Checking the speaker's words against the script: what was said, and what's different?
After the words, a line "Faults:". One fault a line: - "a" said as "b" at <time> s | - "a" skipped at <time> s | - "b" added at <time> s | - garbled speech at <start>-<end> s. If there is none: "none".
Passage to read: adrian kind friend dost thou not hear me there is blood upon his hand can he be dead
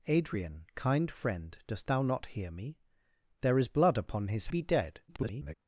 adrian kind friend dost thou not hear me there is blood upon his be dead [garbled]
Faults:
- "hand can he" skipped at 4.5 s
- garbled speech at 5.1-5.5 s